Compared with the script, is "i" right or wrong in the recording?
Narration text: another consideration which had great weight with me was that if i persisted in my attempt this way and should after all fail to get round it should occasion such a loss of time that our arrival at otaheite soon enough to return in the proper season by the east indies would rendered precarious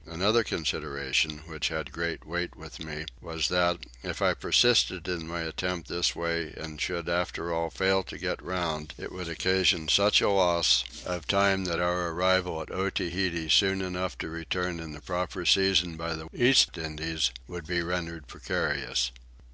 right